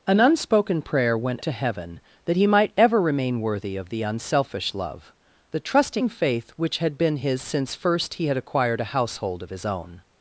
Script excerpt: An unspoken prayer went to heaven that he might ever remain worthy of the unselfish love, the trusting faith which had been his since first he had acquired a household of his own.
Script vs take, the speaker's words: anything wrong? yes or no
no